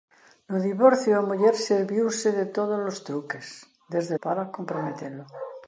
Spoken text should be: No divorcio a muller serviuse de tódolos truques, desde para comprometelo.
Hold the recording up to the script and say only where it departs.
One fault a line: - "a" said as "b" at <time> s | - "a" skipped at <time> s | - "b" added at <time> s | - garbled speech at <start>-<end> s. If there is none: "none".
none